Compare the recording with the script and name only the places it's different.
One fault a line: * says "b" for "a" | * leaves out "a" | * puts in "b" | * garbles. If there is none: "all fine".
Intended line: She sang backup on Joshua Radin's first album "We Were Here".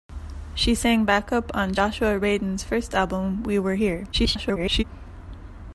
* garbles